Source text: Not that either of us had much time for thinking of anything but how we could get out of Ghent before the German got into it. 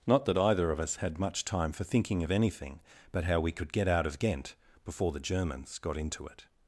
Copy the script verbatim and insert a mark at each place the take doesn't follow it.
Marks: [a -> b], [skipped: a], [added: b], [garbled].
Not that either of us had much time for thinking of anything but how we could get out of Ghent before the [German -> Germans] got into it.